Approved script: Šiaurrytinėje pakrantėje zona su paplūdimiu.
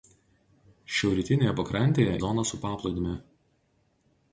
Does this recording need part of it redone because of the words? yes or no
no